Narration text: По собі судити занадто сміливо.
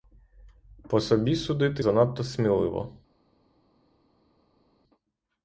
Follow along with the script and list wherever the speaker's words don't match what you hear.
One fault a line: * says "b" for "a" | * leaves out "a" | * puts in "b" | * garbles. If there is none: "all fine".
all fine